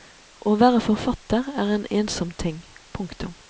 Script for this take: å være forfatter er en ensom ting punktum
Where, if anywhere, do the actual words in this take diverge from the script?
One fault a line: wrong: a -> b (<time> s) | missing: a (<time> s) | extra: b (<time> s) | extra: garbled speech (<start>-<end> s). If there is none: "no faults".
no faults